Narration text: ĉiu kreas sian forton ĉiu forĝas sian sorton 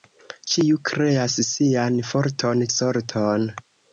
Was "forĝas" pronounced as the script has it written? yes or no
no